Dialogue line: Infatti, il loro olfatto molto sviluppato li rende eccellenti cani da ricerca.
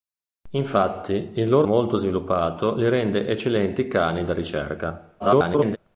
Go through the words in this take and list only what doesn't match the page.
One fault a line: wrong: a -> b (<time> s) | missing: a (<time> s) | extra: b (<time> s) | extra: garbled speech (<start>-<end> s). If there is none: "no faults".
missing: olfatto (1.7 s)
extra: garbled speech (5.2-5.8 s)